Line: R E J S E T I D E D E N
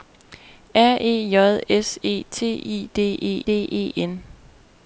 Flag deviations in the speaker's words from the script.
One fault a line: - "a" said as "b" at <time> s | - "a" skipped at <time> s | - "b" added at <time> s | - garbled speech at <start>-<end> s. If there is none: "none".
none